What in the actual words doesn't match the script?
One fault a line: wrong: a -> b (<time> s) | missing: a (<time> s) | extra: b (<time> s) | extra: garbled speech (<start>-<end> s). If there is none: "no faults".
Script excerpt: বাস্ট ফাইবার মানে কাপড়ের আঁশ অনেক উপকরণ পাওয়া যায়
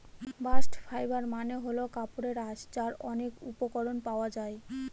extra: হল (1.6 s)
extra: যার (2.8 s)